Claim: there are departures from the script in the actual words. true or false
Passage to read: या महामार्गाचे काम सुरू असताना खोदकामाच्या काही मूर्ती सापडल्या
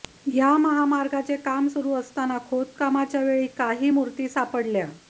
true